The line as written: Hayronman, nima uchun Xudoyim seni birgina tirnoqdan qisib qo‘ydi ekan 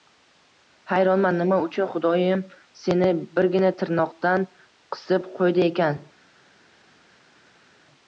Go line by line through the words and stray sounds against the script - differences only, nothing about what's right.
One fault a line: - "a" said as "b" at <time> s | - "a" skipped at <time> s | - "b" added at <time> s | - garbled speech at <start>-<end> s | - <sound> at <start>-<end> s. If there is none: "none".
none